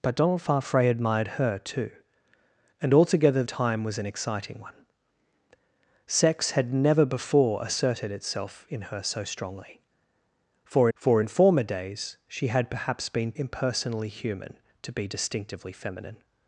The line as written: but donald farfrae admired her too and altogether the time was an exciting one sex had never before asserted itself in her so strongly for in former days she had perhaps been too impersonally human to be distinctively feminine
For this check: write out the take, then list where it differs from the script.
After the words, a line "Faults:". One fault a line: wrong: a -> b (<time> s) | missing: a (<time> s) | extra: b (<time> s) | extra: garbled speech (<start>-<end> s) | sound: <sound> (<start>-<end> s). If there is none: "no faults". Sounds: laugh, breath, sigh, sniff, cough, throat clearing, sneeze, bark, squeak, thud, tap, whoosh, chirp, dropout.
but donald farfrae admired her too and altogether time was an exciting one sex had never before asserted itself in her so strongly for for in former days she had perhaps been impersonally human to be distinctively feminine
Faults:
missing: the (3.4 s)
extra: for (10.9 s)
missing: too (13.3 s)